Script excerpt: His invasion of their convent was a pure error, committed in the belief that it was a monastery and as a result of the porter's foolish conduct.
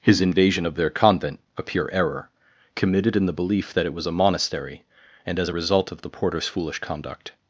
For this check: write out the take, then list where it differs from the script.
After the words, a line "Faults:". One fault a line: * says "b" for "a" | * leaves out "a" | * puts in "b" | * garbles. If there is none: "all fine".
His invasion of their convent a pure error, committed in the belief that it was a monastery and as a result of the porter's foolish conduct.
Faults:
* leaves out "was"